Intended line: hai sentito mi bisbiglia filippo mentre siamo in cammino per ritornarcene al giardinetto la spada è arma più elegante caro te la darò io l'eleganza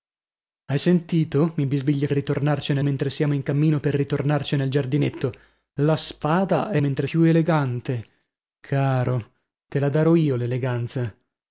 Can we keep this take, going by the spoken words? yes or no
no